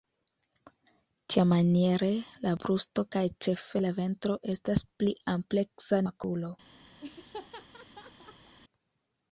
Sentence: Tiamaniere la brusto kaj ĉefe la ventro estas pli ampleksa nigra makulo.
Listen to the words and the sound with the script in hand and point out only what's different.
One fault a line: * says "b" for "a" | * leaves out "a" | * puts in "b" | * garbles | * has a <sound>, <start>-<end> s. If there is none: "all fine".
* leaves out "nigra"
* has a laugh, 7.0-8.6 s